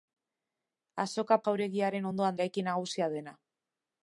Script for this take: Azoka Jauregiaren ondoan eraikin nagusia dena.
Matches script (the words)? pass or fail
pass